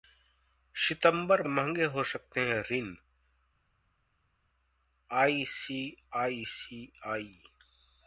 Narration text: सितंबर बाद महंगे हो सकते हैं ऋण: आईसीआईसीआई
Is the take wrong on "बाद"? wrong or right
wrong